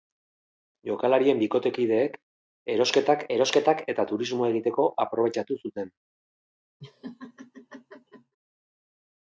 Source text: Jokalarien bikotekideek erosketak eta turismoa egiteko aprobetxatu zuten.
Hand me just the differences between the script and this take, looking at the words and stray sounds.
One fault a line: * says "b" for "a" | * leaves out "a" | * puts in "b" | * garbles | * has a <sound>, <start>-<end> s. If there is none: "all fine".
* puts in "erosketak"
* has a laugh, 6.8-8.4 s